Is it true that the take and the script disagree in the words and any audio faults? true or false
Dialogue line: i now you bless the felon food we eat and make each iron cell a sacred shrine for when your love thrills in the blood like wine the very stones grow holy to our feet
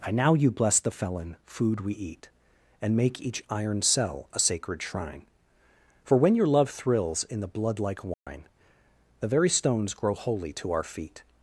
true